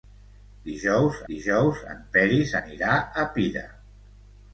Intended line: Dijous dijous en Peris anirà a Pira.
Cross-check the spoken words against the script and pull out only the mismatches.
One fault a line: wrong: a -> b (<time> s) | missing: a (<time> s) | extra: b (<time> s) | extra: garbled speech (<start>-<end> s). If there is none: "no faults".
no faults